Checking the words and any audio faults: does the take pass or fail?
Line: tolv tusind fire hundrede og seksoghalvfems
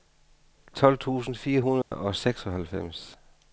fail